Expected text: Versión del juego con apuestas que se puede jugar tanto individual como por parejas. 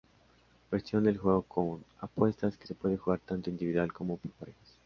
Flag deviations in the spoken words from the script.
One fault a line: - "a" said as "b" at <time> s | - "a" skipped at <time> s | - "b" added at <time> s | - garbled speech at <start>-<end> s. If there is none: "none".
none